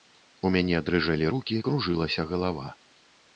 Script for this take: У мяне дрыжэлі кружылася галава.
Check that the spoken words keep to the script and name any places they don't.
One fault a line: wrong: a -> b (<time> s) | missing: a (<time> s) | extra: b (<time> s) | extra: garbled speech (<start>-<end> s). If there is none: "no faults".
extra: рукі (1.3 s)